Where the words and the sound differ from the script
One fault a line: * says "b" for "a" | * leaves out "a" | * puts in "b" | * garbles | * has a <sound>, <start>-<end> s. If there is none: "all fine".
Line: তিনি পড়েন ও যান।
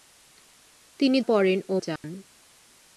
* has a dropout, 2.0-2.0 s